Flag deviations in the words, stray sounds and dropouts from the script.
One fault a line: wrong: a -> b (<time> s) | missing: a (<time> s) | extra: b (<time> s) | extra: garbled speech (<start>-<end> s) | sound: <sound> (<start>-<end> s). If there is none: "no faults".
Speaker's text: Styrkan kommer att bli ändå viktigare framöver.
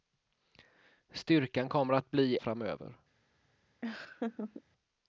missing: ändå viktigare (2.4 s)
sound: laugh (3.8-4.6 s)